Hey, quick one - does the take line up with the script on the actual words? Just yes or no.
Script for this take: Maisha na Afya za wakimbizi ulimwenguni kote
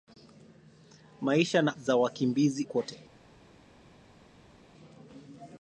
no